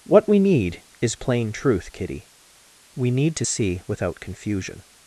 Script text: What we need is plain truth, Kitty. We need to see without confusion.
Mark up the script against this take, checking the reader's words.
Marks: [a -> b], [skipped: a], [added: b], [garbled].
What we need is plain truth, Kitty. We need to see without confusion.